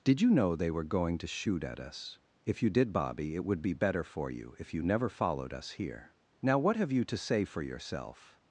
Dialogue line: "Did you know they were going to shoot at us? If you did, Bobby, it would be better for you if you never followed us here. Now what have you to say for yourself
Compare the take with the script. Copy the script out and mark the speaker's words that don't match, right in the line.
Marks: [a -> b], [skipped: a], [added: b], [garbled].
"Did you know they were going to shoot at us? If you did, Bobby, it would be better for you if you never followed us here. Now what have you to say for yourself